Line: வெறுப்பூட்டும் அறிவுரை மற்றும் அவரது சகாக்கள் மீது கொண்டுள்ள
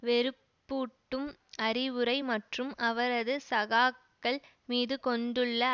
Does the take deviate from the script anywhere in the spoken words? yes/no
no